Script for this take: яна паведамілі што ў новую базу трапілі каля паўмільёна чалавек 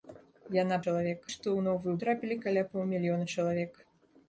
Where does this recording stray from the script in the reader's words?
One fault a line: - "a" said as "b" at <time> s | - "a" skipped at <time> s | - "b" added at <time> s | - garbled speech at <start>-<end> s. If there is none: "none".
- "паведамілі" said as "чалавек" at 0.9 s
- "базу" skipped at 2.0 s